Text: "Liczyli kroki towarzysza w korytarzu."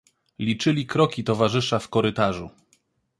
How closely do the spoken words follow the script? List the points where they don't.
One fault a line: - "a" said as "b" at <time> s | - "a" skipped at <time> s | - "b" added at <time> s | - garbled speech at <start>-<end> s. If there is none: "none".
none